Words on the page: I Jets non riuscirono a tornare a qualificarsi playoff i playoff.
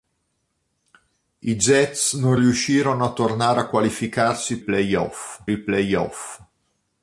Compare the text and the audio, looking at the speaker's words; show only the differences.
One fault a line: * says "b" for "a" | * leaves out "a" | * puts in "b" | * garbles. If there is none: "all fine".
all fine